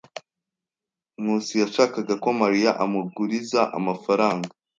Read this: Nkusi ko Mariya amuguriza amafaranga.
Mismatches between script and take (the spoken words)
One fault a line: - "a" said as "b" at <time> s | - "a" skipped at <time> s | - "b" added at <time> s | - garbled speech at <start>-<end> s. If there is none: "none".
- "yashakaga" added at 1.6 s